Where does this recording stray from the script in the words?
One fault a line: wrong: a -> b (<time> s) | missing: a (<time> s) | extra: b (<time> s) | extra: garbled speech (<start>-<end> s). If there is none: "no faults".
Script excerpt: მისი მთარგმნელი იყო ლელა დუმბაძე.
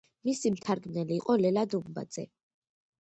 no faults